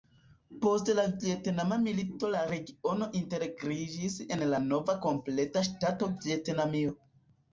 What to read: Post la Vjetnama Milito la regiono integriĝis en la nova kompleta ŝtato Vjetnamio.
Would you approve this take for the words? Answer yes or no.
yes